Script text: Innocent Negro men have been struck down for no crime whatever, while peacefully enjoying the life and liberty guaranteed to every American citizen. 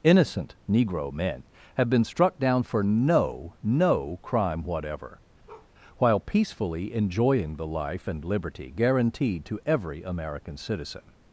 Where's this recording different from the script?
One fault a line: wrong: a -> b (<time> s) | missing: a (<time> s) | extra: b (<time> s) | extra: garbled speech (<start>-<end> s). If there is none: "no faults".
extra: no (3.6 s)